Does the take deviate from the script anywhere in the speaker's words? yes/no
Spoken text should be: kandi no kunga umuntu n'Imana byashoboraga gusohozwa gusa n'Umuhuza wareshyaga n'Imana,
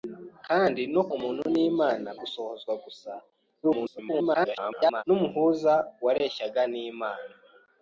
yes